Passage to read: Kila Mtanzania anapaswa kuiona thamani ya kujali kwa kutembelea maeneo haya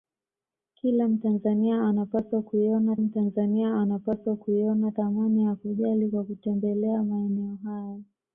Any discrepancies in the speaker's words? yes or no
yes